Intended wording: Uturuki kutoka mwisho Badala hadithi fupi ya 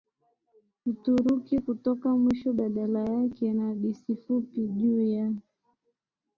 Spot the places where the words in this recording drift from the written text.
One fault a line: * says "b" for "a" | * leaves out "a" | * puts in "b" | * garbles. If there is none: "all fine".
* puts in "yake na"
* puts in "juu"